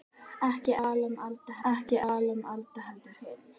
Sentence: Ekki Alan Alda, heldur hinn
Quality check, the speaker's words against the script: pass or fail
fail